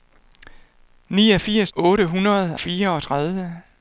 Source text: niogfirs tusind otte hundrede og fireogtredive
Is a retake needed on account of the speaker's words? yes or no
yes